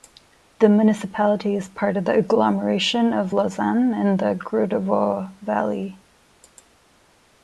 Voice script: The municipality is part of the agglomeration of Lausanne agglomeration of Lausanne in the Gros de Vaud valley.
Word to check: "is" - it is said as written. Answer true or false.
true